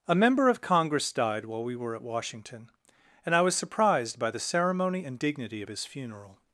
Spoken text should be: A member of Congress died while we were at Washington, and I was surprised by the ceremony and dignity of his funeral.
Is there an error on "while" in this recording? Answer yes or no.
no